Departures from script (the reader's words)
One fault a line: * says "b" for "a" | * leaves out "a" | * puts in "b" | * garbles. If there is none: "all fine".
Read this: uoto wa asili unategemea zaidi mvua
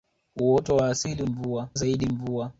* says "mvua" for "unategemea"